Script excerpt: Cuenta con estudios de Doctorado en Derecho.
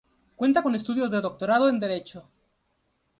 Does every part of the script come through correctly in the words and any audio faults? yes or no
yes